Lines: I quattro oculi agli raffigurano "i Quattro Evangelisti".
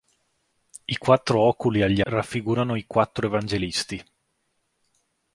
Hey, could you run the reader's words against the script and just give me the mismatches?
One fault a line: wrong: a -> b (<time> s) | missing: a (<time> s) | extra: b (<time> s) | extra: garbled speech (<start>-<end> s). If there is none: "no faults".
no faults